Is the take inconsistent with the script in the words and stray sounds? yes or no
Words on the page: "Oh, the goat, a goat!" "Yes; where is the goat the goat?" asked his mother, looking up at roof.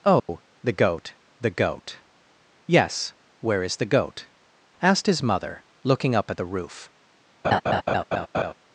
yes